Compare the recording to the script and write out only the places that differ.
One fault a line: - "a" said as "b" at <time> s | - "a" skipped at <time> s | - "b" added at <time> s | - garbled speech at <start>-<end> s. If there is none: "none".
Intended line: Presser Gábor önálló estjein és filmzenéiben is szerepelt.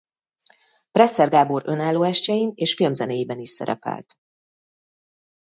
none